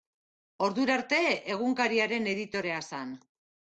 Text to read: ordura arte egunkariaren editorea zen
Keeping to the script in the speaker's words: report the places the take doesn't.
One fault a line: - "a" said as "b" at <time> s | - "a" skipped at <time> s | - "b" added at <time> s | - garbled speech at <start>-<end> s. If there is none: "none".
none